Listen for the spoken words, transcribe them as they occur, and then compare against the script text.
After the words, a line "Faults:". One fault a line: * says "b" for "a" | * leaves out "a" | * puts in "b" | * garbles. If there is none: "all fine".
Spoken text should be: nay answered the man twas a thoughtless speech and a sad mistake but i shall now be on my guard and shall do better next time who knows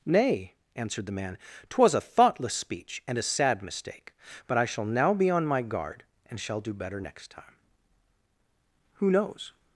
nay answered the man twas a thoughtless speech and a sad mistake but i shall now be on my guard and shall do better next time who knows
Faults:
all fine